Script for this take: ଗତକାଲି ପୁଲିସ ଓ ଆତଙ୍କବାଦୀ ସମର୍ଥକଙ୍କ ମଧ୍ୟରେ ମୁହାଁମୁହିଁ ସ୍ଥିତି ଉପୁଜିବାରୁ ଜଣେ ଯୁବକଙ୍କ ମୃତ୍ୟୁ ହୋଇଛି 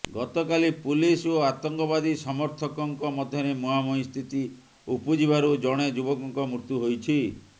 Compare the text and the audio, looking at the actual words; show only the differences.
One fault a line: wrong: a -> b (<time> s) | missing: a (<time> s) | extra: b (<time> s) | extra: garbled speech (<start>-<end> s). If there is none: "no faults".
no faults